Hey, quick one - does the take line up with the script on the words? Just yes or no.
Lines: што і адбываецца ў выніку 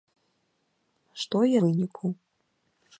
no